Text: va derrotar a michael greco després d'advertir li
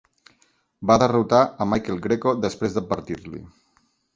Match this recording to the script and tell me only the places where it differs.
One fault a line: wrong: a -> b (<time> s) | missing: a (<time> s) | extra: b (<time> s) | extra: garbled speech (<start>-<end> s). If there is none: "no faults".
no faults